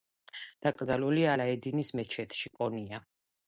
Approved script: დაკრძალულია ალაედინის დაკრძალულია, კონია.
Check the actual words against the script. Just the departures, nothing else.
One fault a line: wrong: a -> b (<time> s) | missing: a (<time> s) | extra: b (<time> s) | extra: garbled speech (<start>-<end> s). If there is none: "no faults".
wrong: დაკრძალულია -> მეჩეთში (2.0 s)